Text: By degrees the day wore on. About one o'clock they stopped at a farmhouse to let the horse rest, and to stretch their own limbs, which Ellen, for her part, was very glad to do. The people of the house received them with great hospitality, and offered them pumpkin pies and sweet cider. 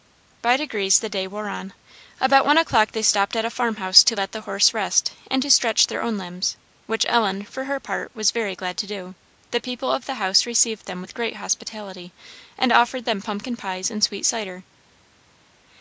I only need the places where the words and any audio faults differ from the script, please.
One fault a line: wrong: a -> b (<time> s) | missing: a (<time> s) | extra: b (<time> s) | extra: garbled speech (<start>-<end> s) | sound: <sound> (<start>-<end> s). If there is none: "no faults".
no faults